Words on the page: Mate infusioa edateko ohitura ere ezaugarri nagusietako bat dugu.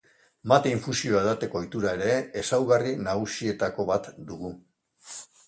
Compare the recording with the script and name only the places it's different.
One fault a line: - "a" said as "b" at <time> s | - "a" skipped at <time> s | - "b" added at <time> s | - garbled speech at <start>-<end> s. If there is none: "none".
none